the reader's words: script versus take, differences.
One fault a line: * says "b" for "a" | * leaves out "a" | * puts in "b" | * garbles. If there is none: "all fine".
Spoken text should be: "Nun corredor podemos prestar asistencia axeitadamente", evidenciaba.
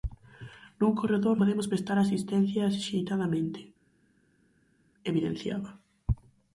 all fine